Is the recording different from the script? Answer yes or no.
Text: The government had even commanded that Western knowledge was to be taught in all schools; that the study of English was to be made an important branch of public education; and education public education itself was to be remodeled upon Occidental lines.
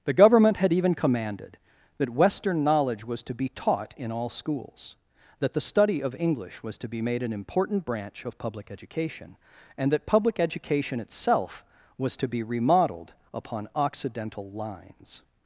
yes